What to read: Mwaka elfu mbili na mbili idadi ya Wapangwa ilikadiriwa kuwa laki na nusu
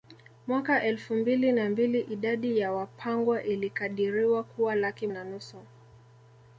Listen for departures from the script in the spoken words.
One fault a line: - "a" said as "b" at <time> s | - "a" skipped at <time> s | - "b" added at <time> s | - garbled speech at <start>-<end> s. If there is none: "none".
none